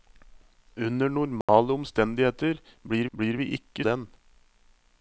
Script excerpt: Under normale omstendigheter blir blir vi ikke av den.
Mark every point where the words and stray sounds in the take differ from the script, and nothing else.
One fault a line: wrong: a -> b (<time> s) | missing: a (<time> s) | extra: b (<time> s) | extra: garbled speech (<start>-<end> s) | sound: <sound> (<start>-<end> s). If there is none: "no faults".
sound: dropout (1.4-1.5 s)